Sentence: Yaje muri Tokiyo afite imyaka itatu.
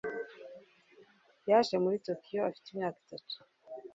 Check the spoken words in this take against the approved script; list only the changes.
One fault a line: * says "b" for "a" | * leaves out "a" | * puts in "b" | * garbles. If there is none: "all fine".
all fine